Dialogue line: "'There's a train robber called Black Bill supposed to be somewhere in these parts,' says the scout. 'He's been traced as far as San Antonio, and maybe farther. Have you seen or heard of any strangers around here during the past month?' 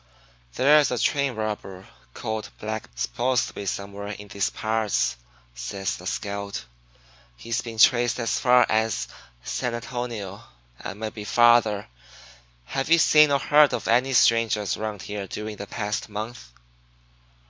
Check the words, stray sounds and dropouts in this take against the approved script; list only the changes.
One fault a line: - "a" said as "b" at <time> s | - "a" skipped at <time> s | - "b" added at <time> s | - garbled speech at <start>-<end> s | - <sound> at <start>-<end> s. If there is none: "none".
- "Bill" skipped at 2.9 s